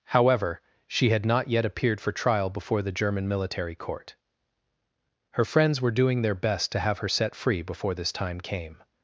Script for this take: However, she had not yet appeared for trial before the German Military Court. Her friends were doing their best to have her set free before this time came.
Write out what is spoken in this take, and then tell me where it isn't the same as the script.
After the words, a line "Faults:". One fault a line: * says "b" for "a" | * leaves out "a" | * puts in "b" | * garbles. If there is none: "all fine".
However, she had not yet appeared for trial before the German Military Court. Her friends were doing their best to have her set free before this time came.
Faults:
all fine